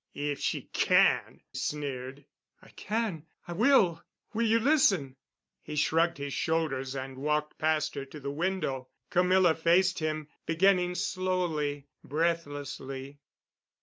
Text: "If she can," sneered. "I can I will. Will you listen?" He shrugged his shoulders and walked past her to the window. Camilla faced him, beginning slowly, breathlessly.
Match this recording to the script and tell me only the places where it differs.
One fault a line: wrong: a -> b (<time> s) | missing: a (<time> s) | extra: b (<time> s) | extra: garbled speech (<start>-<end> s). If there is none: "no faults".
no faults